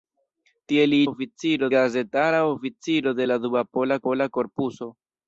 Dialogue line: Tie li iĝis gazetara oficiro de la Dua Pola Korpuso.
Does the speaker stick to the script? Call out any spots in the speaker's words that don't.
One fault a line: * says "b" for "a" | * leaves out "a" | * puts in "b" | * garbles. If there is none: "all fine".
* says "oficiro" for "iĝis"
* puts in "Pola"